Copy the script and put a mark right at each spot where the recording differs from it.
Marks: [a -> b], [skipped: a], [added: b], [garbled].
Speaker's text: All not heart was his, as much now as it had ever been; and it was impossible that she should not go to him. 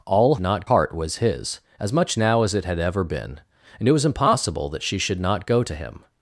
All not heart was his, as much now as it had ever been; and it was impossible that she should not go to him.